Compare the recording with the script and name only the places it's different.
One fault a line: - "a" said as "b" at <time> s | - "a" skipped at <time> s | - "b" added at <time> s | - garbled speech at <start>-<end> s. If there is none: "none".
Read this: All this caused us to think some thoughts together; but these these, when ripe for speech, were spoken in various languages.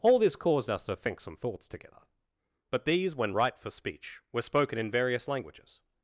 - "these" skipped at 3.1 s